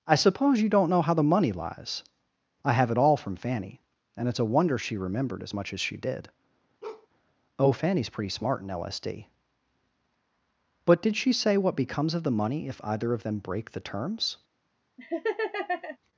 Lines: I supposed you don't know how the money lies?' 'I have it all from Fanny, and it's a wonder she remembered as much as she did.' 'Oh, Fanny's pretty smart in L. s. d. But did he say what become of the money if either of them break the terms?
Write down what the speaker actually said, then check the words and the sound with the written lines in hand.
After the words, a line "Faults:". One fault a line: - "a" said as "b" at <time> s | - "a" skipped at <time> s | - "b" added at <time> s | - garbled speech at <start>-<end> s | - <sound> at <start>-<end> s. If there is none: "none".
I suppose you don't know how the money lies?' 'I have it all from Fanny, and it's a wonder she remembered as much as she did.' 'Oh, Fanny's pretty smart in L. s. d. But did she say what becomes of the money if either of them break the terms?
Faults:
- "supposed" said as "suppose" at 0.1 s
- bark at 6.8-7.1 s
- "he" said as "she" at 11.2 s
- "become" said as "becomes" at 11.8 s
- laugh at 15.0-16.0 s